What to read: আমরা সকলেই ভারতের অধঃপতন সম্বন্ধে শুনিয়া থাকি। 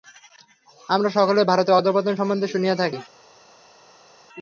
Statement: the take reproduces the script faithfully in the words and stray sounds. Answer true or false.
true